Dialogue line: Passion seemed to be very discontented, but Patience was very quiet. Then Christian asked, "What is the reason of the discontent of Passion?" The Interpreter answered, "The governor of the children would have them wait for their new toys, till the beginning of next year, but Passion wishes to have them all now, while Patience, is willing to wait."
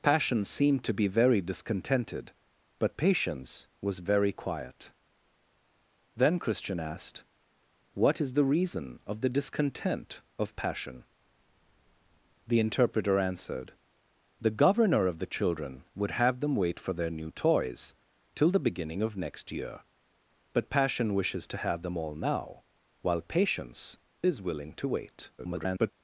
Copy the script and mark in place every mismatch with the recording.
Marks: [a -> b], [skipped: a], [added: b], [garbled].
Passion seemed to be very discontented, but Patience was very quiet. Then Christian asked, "What is the reason of the discontent of Passion?" The Interpreter answered, "The governor of the children would have them wait for their new toys, till the beginning of next year, but Passion wishes to have them all now, while Patience, is willing to wait." [garbled]